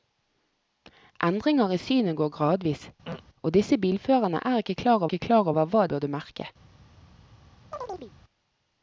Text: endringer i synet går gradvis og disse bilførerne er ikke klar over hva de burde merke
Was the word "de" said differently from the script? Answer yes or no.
yes